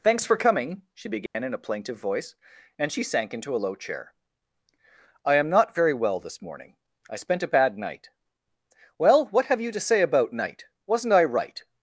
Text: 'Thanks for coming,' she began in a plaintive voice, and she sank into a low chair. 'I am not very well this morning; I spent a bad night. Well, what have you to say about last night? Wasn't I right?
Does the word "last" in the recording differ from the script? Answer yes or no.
yes